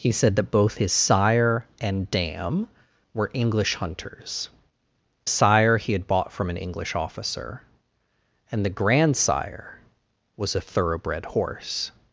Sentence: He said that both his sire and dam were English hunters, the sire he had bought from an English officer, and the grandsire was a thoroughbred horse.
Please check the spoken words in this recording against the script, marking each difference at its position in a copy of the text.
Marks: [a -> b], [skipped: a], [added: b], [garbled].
He said that both his sire and dam were English hunters, [skipped: the] sire he had bought from an English officer, and the grandsire was a thoroughbred horse.